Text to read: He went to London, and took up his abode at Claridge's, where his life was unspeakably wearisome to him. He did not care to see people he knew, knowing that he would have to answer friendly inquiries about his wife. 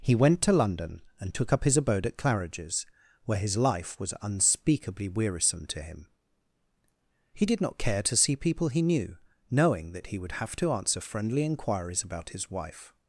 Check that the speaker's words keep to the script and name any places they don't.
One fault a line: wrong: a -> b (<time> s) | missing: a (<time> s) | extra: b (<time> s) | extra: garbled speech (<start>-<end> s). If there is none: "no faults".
no faults